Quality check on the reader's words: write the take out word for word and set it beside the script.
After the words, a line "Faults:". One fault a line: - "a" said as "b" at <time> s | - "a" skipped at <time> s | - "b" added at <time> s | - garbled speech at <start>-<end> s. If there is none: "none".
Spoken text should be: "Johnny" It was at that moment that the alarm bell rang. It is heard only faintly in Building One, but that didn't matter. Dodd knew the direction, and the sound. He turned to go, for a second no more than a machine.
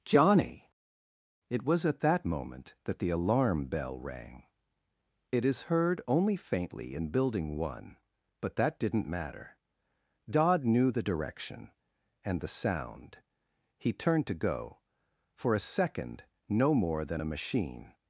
"Johnny" It was at that moment that the alarm bell rang. It is heard only faintly in Building One, but that didn't matter. Dodd knew the direction, and the sound. He turned to go, for a second no more than a machine.
Faults:
none